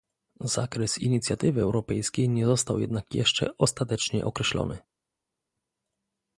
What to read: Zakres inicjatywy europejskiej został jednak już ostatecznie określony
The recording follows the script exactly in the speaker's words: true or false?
false